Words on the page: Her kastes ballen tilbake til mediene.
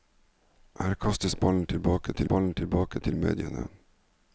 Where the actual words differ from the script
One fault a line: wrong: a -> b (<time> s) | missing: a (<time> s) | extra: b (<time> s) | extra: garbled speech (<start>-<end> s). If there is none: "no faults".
extra: ballen tilbake til (2.2 s)